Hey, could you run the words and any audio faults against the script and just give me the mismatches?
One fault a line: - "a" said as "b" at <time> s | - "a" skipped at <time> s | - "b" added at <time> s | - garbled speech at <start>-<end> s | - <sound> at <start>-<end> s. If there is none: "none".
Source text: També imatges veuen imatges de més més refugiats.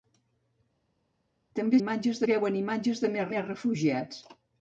none